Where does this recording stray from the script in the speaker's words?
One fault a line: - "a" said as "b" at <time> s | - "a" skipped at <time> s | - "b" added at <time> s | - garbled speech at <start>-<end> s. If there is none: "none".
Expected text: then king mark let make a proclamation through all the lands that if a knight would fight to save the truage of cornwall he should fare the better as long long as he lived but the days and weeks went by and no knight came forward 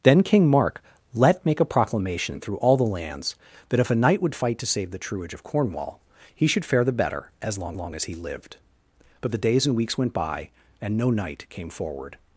none